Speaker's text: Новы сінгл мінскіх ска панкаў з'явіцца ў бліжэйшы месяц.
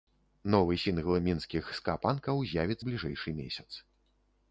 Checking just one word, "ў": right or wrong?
wrong